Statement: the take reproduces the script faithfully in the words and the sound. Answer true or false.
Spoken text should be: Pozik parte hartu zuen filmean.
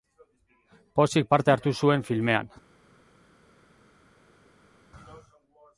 true